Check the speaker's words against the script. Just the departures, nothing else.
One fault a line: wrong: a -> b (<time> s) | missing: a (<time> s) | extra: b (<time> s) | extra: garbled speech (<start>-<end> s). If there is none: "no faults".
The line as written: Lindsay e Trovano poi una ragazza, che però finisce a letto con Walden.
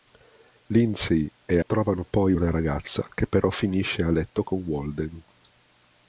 no faults